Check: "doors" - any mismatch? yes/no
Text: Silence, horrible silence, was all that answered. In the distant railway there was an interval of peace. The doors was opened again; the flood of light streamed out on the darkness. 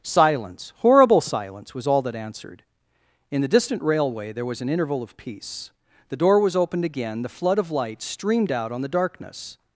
yes